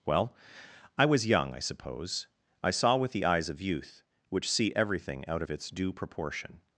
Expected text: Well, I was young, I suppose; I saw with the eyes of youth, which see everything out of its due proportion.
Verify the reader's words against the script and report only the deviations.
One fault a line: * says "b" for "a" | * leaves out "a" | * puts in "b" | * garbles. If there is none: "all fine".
all fine